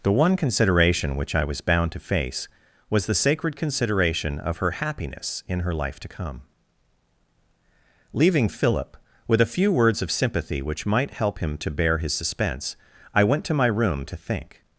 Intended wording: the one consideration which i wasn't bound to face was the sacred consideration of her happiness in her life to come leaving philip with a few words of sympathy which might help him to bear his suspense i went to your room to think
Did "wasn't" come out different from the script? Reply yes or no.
yes